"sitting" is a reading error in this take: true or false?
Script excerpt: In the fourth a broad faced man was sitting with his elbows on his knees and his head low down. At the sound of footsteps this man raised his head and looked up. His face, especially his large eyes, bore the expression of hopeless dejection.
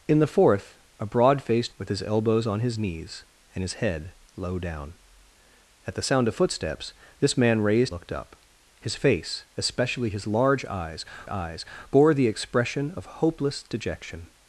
true